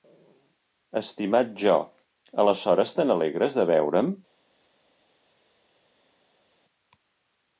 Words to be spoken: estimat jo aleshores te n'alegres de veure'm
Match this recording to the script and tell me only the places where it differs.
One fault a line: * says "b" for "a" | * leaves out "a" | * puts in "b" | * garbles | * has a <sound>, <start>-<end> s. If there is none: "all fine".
all fine